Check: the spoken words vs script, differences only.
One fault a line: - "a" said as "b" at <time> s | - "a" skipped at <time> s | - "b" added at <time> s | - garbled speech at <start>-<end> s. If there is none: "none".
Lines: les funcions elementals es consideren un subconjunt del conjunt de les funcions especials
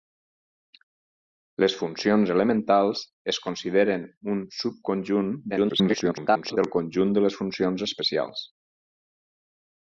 - garbled speech at 5.5-6.6 s